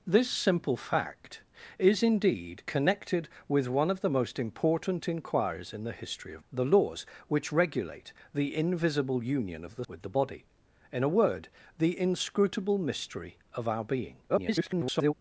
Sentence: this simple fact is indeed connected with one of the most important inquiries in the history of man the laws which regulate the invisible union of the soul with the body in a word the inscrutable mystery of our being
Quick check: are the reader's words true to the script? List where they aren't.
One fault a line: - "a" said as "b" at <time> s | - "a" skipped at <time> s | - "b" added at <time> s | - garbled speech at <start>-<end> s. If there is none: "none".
- "man" skipped at 6.4 s
- "soul" skipped at 9.9 s
- garbled speech at 14.3-15.1 s